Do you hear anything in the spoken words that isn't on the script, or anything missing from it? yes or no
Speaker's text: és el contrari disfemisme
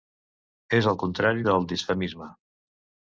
yes